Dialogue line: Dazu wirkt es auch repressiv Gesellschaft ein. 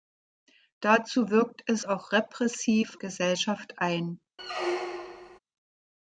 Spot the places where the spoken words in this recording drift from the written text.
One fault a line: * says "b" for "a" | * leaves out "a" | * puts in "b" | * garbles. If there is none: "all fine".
all fine